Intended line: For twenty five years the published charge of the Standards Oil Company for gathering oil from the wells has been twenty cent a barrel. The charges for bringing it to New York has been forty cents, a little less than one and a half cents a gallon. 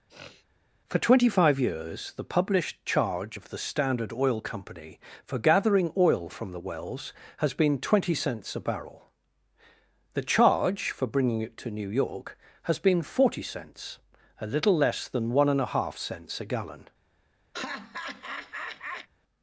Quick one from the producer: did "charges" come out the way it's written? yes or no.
no